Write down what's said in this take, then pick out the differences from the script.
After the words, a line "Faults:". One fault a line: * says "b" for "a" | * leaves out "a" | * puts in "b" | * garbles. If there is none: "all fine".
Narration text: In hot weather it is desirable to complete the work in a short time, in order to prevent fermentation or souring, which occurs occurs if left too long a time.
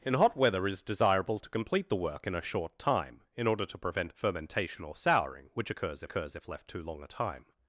In hot weather it is desirable to complete the work in a short time, in order to prevent fermentation or souring, which occurs occurs if left too long a time.
Faults:
all fine